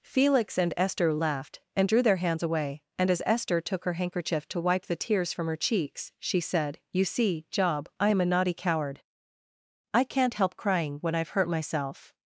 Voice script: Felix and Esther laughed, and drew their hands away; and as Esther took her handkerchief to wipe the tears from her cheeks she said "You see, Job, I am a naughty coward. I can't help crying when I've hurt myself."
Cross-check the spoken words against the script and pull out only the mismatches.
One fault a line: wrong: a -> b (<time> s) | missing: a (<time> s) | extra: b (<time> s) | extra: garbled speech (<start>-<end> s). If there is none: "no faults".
no faults